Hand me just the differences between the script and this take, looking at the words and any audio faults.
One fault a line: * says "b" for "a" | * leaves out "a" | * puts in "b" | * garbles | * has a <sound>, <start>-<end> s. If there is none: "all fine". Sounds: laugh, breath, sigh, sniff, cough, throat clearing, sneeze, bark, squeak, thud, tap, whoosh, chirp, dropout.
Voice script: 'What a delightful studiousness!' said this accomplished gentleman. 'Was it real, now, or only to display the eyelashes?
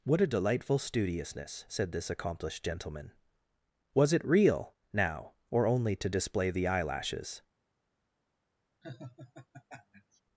* has a laugh, 8.8-10.2 s